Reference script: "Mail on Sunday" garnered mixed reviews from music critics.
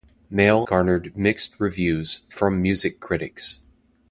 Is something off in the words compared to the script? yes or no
yes